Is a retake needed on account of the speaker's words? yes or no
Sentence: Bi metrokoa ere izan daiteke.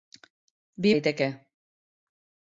yes